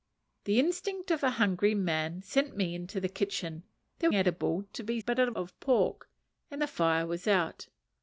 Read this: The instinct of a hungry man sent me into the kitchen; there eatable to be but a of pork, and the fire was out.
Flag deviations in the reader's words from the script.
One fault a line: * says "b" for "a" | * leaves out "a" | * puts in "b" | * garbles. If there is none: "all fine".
all fine